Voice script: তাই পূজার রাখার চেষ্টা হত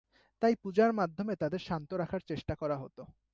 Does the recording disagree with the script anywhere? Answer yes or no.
yes